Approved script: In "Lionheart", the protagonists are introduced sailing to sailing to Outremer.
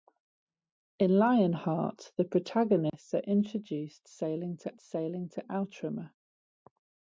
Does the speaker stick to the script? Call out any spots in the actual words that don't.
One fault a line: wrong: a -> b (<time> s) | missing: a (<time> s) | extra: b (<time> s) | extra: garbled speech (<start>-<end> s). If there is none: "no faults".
no faults